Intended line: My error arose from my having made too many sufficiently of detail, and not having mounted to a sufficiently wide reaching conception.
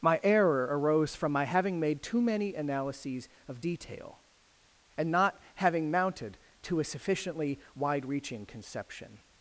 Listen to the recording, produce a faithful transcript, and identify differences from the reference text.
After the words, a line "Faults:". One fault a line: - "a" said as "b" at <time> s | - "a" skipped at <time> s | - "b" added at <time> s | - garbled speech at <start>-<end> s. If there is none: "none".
My error arose from my having made too many analyses of detail, and not having mounted to a sufficiently wide reaching conception.
Faults:
- "sufficiently" said as "analyses" at 2.5 s